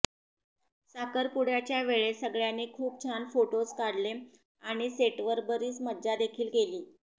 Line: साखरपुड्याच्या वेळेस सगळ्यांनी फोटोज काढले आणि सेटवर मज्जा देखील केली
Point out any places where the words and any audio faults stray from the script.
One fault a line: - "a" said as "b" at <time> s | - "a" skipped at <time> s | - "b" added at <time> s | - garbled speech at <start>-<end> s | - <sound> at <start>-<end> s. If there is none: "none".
- "खूप छान" added at 2.7 s
- "बरीच" added at 5.5 s